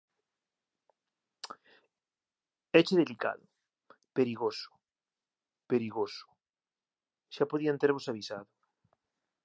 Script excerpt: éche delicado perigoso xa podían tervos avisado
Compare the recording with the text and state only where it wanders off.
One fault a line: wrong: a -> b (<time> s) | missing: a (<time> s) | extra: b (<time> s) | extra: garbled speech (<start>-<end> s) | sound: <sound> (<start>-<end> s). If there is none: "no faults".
extra: perigoso (5.7 s)